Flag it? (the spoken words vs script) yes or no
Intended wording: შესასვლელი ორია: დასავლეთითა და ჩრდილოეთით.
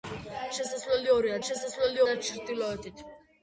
yes